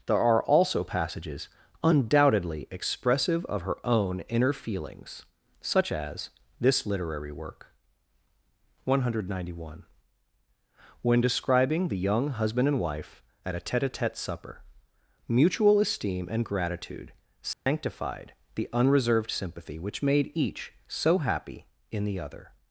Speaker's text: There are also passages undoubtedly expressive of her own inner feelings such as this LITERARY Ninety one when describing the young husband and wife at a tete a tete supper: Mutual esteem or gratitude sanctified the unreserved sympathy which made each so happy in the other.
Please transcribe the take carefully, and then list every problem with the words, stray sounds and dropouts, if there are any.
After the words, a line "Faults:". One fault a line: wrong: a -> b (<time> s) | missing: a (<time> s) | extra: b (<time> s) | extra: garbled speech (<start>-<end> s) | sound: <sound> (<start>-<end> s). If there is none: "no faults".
There are also passages undoubtedly expressive of her own inner feelings such as this LITERARY WORK. One hundred ninety one when describing the young husband and wife at a tete a tete supper: Mutual esteem and gratitude sanctified the unreserved sympathy which made each so happy in the other.
Faults:
extra: WORK One hundred (7.3 s)
wrong: or -> and (16.3 s)
sound: dropout (17.5-17.7 s)